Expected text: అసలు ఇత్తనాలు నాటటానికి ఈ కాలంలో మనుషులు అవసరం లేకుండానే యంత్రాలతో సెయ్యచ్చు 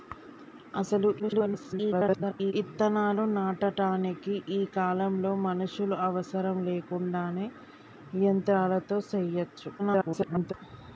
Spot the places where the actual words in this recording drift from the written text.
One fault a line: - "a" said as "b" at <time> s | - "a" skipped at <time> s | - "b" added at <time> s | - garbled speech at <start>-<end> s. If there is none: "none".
- garbled speech at 1.2-2.5 s
- garbled speech at 9.8-10.5 s